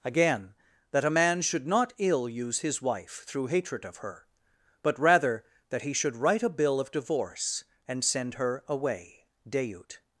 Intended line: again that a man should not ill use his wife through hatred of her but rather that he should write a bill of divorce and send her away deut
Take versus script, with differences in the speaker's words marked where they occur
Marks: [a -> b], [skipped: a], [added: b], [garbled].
again that a man should not ill use his wife through hatred of her but rather that he should write a bill of divorce and send her away deut